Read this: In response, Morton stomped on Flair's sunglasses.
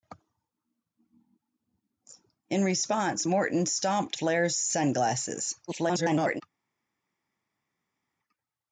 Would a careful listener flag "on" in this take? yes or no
yes